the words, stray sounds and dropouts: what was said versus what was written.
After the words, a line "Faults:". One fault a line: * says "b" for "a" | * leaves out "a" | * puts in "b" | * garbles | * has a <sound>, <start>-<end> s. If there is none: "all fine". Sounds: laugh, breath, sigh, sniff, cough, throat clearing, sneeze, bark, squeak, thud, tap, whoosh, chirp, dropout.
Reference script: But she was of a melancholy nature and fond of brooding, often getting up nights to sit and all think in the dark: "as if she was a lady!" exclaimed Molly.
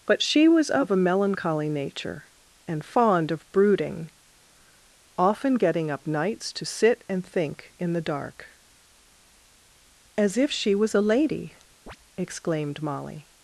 But she was of a melancholy nature and fond of brooding, often getting up nights to sit and think in the dark: "as if she was a lady!" exclaimed Molly.
Faults:
* leaves out "all"
* has a chirp, 11.9-12.0 s